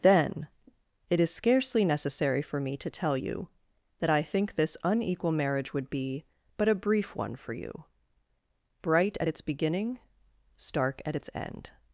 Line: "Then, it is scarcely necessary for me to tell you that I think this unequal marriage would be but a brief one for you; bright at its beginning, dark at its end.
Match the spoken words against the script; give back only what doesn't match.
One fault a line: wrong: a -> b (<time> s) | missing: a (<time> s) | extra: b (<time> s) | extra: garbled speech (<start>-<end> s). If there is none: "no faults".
wrong: dark -> stark (10.6 s)